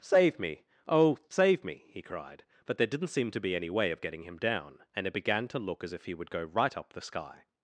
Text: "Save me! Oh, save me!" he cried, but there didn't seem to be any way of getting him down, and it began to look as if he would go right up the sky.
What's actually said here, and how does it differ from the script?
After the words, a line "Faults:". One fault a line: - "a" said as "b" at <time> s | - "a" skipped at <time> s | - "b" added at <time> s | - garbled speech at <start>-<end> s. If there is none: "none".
"Save me! Oh, save me!" he cried, but there didn't seem to be any way of getting him down, and it began to look as if he would go right up the sky.
Faults:
none